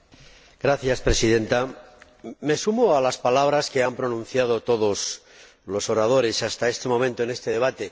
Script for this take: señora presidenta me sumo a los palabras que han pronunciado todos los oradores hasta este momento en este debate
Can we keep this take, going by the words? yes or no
no